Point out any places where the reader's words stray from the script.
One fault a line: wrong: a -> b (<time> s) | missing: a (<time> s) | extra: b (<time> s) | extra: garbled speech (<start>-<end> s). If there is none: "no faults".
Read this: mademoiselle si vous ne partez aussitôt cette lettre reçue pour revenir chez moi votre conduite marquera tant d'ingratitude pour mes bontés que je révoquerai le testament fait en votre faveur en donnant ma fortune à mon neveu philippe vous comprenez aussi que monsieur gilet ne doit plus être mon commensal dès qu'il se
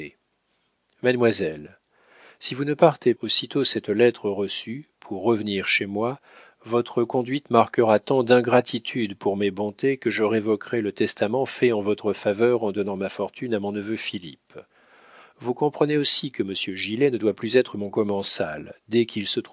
no faults